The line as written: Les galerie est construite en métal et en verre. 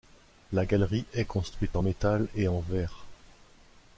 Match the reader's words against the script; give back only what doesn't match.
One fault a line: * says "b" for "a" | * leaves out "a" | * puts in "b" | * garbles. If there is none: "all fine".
* says "La" for "Les"